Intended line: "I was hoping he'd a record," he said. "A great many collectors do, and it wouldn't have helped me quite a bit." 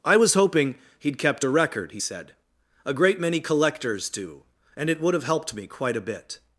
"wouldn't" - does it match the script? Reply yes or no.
no